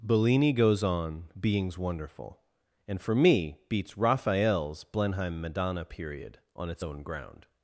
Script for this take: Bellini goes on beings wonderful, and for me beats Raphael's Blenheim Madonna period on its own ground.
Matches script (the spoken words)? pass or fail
pass